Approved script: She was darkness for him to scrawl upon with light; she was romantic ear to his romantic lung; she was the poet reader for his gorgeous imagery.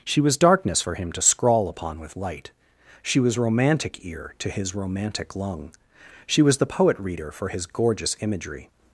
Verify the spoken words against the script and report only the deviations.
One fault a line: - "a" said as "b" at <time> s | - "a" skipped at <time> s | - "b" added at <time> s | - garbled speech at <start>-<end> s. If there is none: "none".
none